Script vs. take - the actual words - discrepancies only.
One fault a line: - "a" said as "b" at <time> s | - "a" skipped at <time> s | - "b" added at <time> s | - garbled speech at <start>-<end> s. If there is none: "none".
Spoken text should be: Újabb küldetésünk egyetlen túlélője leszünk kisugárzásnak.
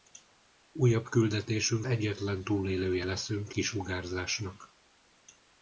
none